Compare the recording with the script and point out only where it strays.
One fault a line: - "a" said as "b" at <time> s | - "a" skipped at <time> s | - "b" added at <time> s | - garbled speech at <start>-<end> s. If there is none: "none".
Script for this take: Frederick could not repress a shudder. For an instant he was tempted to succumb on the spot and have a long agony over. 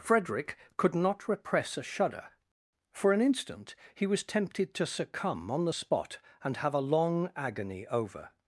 none